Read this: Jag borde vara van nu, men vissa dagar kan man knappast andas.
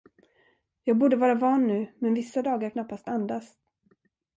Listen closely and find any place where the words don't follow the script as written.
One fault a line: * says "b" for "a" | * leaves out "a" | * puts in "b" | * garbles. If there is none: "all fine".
* leaves out "kan man"